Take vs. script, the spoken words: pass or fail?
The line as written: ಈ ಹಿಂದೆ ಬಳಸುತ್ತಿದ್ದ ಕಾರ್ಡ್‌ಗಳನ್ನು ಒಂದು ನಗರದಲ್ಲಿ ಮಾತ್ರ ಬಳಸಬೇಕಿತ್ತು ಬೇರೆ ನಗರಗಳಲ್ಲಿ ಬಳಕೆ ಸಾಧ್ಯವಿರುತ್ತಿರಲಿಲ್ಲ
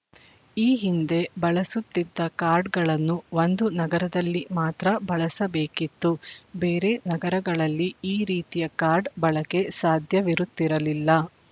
fail